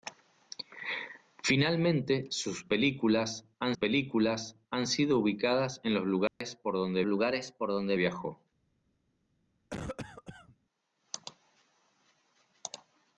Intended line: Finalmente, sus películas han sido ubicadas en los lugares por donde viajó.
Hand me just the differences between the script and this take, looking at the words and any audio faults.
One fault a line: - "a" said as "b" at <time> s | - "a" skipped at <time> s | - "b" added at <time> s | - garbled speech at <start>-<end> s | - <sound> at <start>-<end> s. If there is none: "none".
- "películas han" added at 3.7 s
- dropout at 6.3-6.4 s
- "lugares por donde" added at 7.0 s
- cough at 9.7-10.6 s